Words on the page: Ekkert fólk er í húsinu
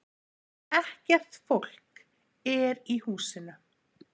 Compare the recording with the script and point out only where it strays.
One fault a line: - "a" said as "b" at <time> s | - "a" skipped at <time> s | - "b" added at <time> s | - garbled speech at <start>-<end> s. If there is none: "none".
none